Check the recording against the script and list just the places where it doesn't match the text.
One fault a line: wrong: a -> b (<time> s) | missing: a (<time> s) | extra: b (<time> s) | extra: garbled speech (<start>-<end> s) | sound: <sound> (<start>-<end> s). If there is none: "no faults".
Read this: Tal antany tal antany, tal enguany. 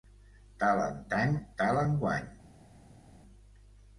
missing: antany tal (1.8 s)